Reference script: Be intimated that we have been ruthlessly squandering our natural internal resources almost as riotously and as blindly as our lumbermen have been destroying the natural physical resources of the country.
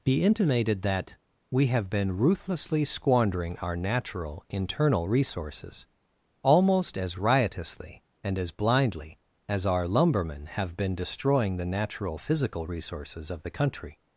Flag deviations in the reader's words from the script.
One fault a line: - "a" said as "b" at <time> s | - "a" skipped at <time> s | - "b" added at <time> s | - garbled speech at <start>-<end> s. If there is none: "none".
none